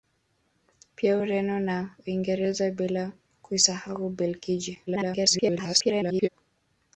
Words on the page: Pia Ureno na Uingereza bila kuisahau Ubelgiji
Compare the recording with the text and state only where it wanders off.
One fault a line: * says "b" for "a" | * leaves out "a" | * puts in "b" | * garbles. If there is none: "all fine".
* garbles